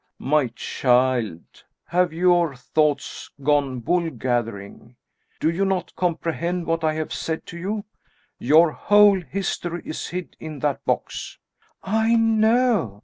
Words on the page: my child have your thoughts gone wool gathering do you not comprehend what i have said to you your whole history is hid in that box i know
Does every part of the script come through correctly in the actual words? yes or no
yes